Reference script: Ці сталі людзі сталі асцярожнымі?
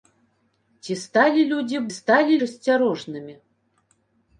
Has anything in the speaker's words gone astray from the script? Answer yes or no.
no